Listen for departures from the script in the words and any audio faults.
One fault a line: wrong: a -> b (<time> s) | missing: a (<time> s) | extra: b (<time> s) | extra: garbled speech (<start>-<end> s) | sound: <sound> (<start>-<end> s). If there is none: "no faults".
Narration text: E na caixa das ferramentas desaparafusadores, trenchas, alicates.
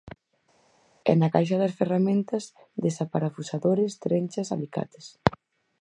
no faults